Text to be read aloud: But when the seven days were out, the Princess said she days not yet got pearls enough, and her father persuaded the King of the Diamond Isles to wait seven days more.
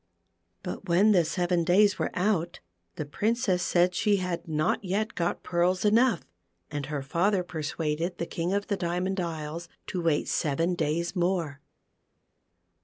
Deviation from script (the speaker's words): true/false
true